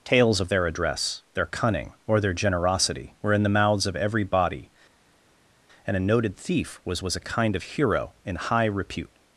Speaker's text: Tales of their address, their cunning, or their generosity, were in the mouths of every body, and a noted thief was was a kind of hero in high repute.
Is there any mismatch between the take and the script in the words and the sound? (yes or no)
no